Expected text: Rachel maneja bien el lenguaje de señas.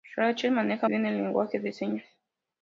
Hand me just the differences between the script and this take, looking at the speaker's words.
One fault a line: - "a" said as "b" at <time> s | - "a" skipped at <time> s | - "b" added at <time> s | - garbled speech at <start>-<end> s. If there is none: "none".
none